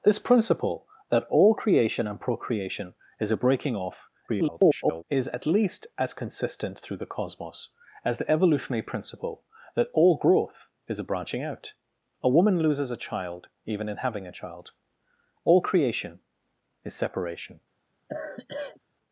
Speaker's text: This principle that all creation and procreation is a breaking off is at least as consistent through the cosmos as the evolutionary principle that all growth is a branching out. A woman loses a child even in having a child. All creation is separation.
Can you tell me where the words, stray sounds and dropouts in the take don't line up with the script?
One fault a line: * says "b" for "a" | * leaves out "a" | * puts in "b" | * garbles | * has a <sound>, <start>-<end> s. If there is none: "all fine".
* garbles
* has a sigh, 18.1-18.8 s